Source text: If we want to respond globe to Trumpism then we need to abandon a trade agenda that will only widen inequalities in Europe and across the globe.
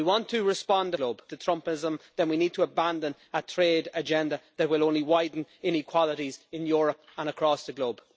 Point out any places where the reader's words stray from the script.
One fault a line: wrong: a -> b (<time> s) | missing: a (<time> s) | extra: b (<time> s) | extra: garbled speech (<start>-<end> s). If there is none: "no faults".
no faults